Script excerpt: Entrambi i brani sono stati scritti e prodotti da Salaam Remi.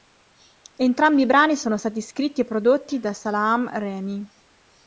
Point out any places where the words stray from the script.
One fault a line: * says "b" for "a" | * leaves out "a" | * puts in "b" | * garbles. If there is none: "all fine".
all fine